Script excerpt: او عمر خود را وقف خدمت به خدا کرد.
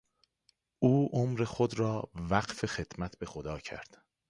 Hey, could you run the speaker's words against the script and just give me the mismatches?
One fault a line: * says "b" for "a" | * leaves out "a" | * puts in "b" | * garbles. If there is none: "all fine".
all fine